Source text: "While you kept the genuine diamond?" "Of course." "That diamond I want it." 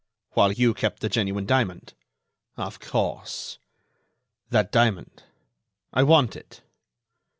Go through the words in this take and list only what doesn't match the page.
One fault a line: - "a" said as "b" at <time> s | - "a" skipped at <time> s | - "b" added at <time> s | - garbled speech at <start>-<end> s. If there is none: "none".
none